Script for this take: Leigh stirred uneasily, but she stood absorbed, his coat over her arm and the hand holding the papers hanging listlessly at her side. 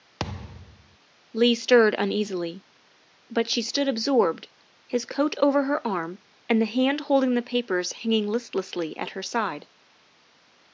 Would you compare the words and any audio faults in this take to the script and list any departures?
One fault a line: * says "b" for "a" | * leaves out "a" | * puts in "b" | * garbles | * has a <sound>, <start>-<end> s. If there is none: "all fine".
* has a thud, 0.2-1.0 s